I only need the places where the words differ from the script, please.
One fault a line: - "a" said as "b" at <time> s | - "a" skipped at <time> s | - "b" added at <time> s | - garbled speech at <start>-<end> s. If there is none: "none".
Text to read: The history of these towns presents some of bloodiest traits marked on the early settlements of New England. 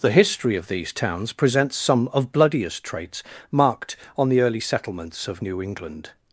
none